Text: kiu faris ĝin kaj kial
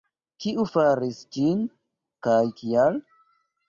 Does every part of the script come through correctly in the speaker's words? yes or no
yes